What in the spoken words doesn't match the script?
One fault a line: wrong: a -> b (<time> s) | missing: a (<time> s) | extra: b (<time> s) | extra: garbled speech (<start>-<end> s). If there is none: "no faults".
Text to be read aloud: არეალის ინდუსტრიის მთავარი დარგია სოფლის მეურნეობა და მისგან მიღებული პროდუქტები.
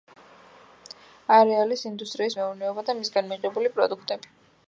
missing: მთავარი დარგია სოფლის (2.4 s)